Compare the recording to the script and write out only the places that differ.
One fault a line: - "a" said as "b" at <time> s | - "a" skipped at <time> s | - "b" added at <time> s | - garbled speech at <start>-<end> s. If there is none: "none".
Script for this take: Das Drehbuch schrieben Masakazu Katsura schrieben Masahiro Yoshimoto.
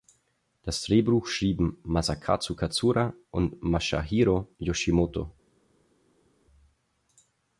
- "schrieben" said as "und" at 3.3 s